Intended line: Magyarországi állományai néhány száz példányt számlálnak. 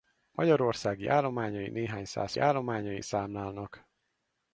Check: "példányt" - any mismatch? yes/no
yes